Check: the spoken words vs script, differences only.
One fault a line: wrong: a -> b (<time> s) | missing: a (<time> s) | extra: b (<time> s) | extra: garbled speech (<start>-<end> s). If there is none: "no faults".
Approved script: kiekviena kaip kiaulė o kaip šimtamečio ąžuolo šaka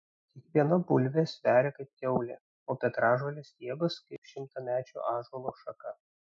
extra: bulvė sveria (0.9 s)
extra: petražolės stiebas (2.8 s)